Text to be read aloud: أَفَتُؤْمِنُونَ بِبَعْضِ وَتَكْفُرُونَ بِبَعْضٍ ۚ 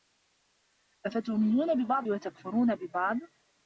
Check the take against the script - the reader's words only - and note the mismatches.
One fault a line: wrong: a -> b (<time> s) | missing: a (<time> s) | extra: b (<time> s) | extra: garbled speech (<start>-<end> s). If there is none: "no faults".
no faults